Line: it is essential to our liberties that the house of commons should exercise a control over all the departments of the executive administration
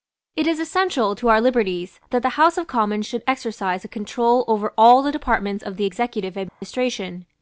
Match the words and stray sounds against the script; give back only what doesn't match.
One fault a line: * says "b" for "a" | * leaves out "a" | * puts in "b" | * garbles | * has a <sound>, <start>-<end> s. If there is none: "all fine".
* has a dropout, 6.5-6.6 s